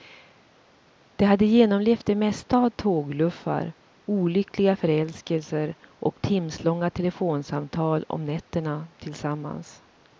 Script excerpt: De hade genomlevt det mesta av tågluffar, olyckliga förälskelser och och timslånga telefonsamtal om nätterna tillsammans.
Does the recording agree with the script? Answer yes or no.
no